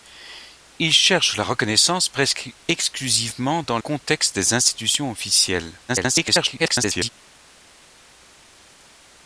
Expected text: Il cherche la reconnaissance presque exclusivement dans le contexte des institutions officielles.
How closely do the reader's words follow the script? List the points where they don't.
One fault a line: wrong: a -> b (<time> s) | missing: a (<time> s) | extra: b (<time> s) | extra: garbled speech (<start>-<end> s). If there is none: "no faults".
missing: le (3.8 s)
extra: garbled speech (5.9-7.1 s)